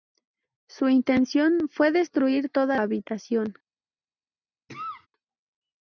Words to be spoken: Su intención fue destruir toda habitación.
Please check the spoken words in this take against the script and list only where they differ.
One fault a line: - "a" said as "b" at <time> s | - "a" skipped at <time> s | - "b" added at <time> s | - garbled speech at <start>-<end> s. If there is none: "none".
none